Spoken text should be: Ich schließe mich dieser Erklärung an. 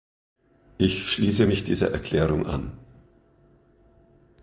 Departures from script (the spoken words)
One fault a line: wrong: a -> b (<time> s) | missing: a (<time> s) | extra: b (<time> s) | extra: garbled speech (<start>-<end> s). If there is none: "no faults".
no faults